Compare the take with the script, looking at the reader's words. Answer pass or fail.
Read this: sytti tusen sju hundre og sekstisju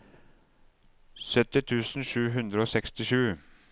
pass